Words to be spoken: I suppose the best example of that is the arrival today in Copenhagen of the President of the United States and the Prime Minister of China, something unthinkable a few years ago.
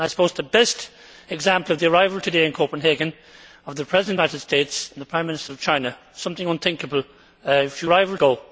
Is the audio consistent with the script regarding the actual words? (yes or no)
no